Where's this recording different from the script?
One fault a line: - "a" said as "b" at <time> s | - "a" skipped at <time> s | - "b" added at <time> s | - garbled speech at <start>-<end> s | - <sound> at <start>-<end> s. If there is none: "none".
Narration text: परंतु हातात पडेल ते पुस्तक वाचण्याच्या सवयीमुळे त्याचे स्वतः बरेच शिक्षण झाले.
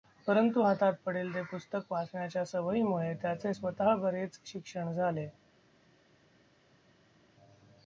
none